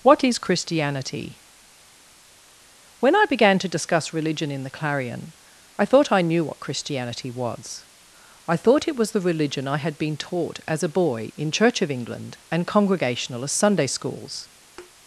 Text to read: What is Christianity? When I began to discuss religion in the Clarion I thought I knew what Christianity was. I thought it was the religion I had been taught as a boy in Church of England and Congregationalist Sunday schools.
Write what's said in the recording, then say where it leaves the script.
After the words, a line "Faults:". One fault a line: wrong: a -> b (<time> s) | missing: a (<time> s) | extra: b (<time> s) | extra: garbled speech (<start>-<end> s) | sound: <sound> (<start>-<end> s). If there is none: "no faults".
What is Christianity? When I began to discuss religion in the Clarion I thought I knew what Christianity was. I thought it was the religion I had been taught as a boy in Church of England and Congregationalist Sunday schools.
Faults:
sound: thud (14.8-14.9 s)